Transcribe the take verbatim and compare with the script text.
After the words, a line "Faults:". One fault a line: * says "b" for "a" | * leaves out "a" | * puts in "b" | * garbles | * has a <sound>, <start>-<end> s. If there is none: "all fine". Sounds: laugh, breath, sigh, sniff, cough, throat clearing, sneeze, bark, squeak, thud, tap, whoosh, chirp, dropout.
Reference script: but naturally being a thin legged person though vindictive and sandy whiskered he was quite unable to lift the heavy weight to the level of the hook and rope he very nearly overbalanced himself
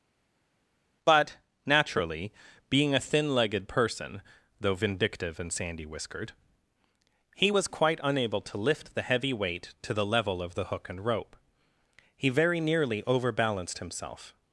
but naturally being a thin legged person though vindictive and sandy whiskered he was quite unable to lift the heavy weight to the level of the hook and rope he very nearly overbalanced himself
Faults:
all fine